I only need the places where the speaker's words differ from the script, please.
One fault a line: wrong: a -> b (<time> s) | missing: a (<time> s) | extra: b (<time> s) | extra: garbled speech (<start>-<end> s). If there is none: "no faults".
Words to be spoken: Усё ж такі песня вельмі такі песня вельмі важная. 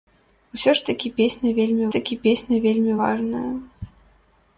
no faults